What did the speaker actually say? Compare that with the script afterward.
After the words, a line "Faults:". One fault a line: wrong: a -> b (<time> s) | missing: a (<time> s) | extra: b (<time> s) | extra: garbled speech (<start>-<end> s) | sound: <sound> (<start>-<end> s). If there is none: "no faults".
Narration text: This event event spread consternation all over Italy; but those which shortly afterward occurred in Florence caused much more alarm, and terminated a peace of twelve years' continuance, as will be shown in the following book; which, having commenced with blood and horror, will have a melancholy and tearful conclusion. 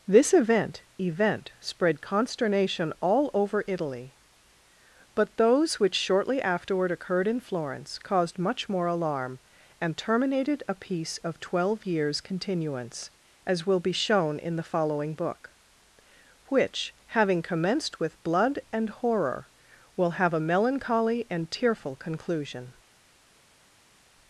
This event event spread consternation all over Italy; but those which shortly afterward occurred in Florence caused much more alarm, and terminated a peace of twelve years' continuance, as will be shown in the following book; which, having commenced with blood and horror, will have a melancholy and tearful conclusion.
Faults:
no faults